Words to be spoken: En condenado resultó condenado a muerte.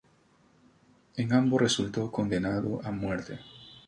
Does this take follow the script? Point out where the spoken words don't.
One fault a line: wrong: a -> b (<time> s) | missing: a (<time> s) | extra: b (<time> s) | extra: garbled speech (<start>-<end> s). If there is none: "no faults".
wrong: condenado -> ambos (1.3 s)